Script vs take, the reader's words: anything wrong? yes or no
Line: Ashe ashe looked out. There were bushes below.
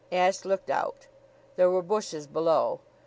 yes